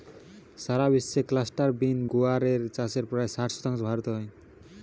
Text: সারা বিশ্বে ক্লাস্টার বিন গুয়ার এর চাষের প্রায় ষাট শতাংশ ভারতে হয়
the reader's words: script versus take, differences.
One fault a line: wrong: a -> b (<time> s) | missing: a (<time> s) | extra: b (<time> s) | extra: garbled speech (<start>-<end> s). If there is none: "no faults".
no faults